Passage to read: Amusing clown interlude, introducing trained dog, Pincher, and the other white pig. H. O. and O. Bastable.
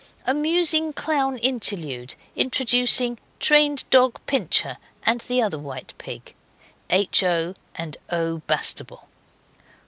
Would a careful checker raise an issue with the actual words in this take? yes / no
no